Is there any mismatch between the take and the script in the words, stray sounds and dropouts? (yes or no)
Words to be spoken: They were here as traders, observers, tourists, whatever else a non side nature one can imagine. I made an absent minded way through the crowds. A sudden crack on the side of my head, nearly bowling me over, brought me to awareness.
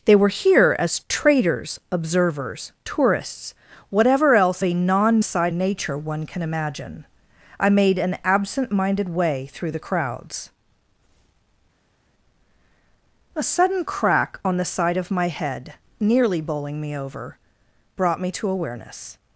no